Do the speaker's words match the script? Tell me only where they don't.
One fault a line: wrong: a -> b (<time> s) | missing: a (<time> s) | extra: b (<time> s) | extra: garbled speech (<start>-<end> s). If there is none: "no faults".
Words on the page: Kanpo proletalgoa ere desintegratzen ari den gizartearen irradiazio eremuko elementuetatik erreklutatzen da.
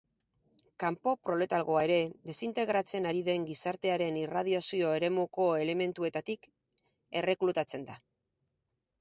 no faults